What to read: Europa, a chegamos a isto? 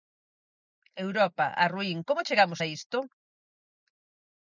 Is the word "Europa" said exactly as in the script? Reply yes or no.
yes